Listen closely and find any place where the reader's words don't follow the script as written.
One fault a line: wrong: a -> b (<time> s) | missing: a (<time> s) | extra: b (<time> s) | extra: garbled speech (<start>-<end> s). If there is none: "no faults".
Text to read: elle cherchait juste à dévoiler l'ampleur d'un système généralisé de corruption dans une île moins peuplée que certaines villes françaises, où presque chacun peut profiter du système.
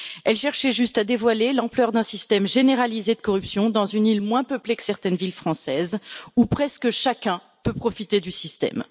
no faults